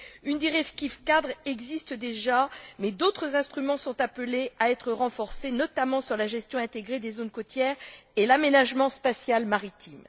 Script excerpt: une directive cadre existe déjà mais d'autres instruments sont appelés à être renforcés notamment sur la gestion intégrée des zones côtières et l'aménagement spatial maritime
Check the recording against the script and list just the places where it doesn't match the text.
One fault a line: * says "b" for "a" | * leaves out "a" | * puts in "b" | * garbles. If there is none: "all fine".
all fine